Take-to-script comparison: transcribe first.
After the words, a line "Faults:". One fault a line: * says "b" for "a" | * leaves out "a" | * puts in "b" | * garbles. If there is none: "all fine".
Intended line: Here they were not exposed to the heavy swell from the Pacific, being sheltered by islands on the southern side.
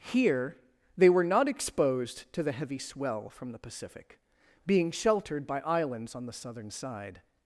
Here they were not exposed to the heavy swell from the Pacific, being sheltered by islands on the southern side.
Faults:
all fine